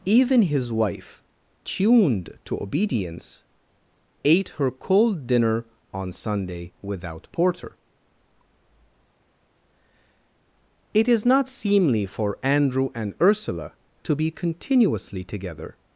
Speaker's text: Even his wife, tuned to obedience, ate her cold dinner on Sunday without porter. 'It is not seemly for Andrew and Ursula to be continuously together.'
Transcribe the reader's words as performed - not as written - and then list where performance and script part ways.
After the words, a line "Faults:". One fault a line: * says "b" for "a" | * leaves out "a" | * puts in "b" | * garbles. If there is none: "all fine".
Even his wife, tuned to obedience, ate her cold dinner on Sunday without porter. 'It is not seemly for Andrew and Ursula to be continuously together.'
Faults:
all fine